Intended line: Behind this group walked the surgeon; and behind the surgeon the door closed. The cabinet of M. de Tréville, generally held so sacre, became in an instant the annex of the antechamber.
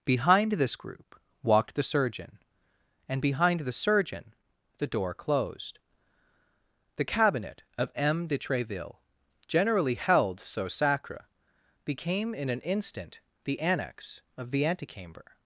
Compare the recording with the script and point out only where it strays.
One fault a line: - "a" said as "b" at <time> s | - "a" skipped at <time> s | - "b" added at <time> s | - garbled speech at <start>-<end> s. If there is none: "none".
none